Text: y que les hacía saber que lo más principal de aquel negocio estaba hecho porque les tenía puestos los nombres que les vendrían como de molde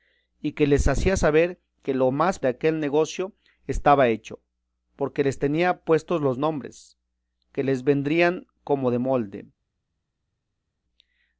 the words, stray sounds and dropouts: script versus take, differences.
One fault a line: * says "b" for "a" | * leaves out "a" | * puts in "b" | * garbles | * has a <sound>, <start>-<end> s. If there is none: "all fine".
* leaves out "principal"